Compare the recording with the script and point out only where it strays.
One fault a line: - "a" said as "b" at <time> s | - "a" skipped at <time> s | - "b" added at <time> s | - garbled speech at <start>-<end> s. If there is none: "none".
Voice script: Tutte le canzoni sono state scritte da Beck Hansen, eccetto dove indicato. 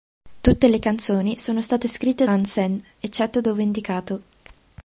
- "da Beck" skipped at 2.2 s